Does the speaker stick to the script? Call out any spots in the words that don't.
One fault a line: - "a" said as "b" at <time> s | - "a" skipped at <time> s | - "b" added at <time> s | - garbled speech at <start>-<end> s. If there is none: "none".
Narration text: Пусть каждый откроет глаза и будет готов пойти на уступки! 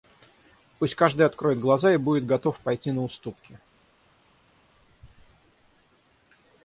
none